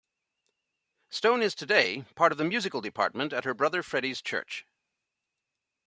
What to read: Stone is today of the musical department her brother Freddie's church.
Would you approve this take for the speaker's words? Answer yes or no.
no